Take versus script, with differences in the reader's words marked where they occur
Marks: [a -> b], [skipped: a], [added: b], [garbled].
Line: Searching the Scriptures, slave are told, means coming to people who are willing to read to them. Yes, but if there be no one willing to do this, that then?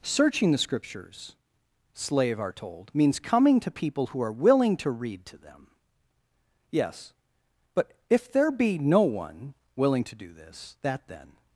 Searching the Scriptures, slave are told, means coming to people who are willing to read to them. Yes, but if there be no one willing to do this, that then?